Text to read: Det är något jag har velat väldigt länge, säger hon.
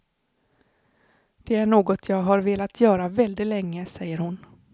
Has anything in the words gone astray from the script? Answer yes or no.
yes